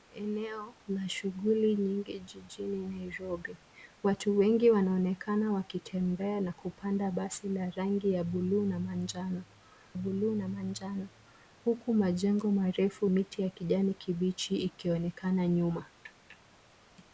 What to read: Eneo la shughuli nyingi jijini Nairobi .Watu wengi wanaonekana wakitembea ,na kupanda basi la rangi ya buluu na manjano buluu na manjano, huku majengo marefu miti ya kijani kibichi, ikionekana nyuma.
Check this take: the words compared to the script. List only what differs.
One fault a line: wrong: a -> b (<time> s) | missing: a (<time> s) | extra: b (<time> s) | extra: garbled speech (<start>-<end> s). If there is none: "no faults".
no faults